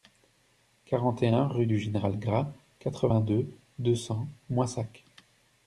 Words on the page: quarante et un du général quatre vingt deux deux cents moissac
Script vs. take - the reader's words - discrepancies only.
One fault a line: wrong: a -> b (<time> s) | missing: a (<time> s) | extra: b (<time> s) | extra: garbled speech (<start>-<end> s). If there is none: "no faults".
extra: rue (1.5 s)
extra: gras (2.2 s)